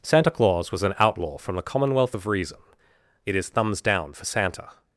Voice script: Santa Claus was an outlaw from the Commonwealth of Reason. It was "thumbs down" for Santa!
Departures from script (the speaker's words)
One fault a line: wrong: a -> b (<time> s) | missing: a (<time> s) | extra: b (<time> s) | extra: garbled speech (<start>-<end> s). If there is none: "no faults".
wrong: was -> is (3.3 s)